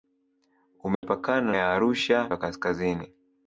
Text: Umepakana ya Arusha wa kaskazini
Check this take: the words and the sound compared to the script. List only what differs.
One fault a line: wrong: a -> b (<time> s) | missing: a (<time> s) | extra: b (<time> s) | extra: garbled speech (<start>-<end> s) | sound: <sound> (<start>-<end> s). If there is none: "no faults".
sound: dropout (0.9-1.0 s)